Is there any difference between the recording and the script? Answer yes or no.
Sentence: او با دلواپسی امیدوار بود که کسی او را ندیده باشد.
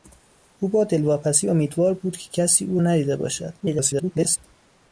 yes